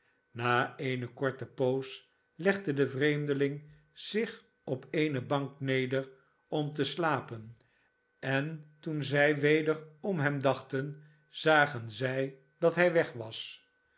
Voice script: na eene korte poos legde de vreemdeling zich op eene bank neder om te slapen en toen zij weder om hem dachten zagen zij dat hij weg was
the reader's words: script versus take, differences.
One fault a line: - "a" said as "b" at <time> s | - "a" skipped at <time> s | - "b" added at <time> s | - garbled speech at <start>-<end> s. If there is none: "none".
none